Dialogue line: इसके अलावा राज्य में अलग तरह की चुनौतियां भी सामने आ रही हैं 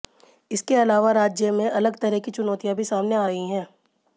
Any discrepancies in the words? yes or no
no